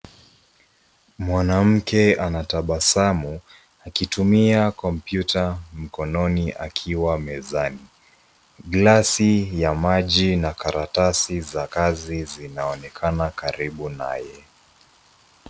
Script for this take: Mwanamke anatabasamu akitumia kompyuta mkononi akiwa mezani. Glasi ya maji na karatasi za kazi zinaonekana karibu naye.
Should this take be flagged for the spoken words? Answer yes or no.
no